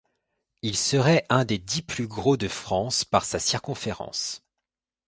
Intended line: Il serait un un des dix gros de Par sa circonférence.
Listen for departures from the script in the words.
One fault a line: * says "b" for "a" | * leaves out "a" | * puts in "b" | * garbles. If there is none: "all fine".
* leaves out "un"
* puts in "plus"
* puts in "France"